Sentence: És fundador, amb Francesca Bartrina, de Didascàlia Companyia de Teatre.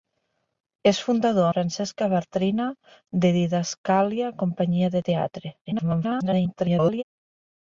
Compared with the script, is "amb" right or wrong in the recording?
wrong